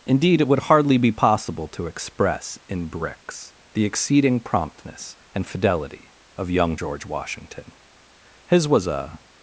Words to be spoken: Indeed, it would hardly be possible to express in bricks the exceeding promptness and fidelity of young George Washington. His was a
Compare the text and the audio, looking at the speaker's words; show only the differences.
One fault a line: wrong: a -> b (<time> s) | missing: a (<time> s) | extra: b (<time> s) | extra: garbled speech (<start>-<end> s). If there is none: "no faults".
no faults